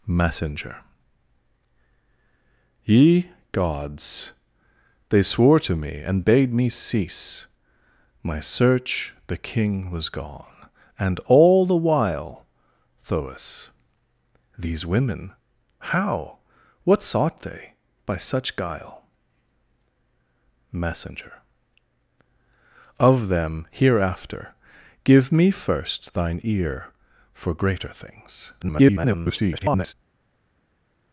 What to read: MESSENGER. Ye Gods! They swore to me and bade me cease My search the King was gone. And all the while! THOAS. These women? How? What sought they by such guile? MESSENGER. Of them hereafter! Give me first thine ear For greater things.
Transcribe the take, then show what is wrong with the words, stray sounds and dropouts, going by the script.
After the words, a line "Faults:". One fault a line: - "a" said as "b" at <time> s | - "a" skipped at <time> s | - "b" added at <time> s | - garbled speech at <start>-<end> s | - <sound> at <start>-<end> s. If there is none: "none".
MESSENGER. Ye Gods! They swore to me and bade me cease My search the King was gone. And all the while! THOAS. These women? How? What sought they by such guile? MESSENGER. Of them hereafter! Give me first thine ear For greater things. [garbled]
Faults:
- garbled speech at 28.6-29.9 s